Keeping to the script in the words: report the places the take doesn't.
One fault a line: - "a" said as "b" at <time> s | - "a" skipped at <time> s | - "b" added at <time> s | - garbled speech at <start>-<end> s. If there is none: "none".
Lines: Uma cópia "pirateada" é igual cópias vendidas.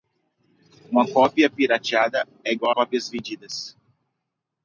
none